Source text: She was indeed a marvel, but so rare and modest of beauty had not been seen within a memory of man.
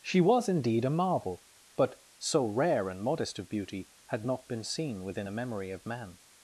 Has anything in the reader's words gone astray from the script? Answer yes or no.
no